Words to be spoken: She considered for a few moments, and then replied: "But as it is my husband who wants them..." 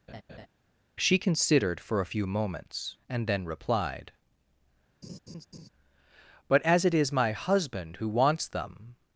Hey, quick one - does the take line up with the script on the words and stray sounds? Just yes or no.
no